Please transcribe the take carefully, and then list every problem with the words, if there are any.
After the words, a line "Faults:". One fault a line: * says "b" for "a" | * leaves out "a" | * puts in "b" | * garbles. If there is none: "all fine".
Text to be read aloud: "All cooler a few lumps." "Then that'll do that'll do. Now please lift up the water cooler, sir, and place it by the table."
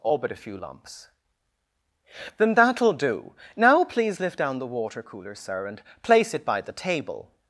"All but a few lumps." "Then that'll do. Now please lift down the water cooler, sir, and place it by the table."
Faults:
* says "but" for "cooler"
* leaves out "that'll do"
* says "down" for "up"